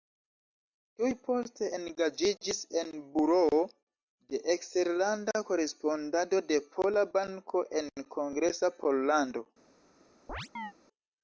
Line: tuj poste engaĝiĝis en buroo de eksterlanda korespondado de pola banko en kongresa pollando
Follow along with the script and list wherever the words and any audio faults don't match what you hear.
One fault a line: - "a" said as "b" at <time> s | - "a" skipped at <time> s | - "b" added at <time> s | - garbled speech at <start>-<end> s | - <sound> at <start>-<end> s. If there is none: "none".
- chirp at 10.3-10.7 s